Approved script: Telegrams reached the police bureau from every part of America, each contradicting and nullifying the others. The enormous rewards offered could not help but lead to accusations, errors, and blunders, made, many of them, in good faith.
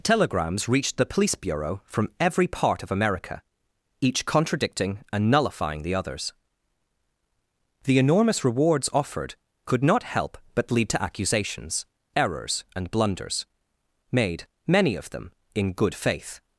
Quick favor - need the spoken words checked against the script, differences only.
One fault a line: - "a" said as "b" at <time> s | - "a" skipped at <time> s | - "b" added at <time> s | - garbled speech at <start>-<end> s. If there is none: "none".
none